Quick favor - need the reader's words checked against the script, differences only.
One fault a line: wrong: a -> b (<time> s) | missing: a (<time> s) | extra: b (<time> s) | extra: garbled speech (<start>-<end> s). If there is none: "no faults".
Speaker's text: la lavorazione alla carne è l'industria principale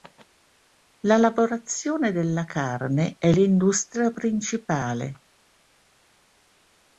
wrong: alla -> della (2.1 s)